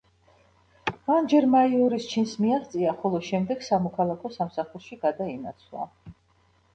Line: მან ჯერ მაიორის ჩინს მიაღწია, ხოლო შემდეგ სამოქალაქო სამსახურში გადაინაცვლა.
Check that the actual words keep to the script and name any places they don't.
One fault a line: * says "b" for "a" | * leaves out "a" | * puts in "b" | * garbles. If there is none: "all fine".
all fine